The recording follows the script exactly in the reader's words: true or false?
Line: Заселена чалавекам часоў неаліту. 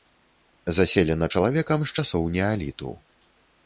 false